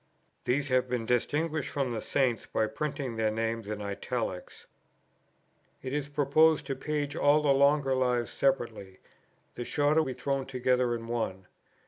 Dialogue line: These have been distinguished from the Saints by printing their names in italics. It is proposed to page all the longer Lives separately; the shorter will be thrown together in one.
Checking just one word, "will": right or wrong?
wrong